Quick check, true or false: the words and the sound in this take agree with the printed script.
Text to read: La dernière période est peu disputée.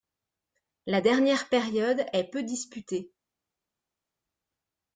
true